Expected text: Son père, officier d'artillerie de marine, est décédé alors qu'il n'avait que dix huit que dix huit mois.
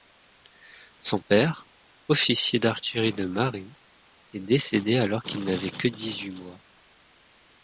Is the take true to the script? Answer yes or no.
no